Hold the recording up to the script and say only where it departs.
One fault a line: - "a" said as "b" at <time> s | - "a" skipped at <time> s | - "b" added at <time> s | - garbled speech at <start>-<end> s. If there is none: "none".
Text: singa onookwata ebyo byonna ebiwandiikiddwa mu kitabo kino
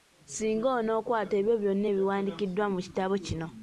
none